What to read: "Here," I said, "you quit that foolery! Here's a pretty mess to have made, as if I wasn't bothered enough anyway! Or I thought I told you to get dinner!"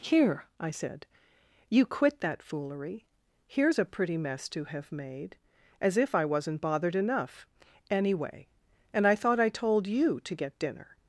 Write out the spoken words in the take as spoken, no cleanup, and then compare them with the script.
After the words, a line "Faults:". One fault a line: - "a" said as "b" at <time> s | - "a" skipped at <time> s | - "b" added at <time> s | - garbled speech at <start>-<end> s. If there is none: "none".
"Here," I said, "you quit that foolery! Here's a pretty mess to have made, as if I wasn't bothered enough anyway! And I thought I told you to get dinner!"
Faults:
- "Or" said as "And" at 8.9 s